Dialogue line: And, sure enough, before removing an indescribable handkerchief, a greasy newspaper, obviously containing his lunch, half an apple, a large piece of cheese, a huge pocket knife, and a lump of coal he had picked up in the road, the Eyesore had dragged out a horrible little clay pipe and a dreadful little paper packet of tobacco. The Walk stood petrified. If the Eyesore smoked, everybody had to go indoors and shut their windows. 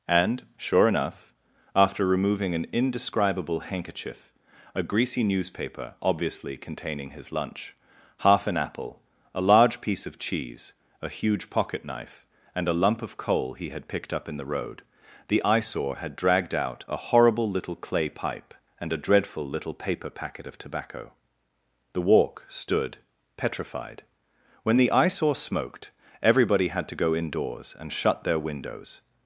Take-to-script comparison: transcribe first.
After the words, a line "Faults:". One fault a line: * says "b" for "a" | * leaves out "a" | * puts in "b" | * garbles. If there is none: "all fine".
And, sure enough, after removing an indescribable handkerchief, a greasy newspaper, obviously containing his lunch, half an apple, a large piece of cheese, a huge pocket knife, and a lump of coal he had picked up in the road, the Eyesore had dragged out a horrible little clay pipe and a dreadful little paper packet of tobacco. The Walk stood petrified. When the Eyesore smoked, everybody had to go indoors and shut their windows.
Faults:
* says "after" for "before"
* says "When" for "If"